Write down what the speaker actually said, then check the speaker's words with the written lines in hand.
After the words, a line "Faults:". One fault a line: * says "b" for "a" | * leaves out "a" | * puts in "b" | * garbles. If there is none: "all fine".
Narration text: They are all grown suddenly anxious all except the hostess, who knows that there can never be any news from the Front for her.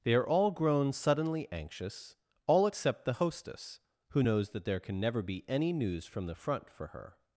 They are all grown suddenly anxious all except the hostess, who knows that there can never be any news from the Front for her.
Faults:
all fine